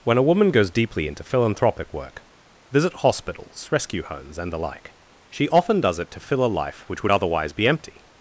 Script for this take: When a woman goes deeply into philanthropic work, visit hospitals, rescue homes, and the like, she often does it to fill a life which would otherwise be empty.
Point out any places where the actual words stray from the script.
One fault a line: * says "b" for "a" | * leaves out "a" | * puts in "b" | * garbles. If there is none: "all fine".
all fine